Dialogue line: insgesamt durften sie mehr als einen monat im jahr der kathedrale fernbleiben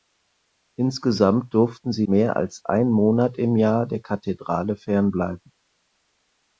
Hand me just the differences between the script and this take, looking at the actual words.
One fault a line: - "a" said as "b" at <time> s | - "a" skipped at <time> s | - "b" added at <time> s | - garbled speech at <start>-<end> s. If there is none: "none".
none